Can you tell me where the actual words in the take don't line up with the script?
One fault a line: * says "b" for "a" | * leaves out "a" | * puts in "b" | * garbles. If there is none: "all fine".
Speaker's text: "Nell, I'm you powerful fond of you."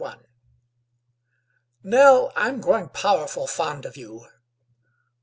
* says "growing" for "you"